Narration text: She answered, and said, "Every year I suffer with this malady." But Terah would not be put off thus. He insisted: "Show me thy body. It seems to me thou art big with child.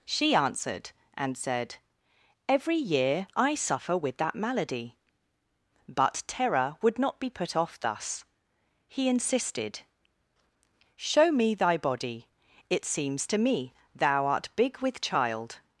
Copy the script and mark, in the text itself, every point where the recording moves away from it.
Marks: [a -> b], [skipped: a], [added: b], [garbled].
She answered, and said, "Every year I suffer with [this -> that] malady." But Terah would not be put off thus. He insisted: "Show me thy body. It seems to me thou art big with child.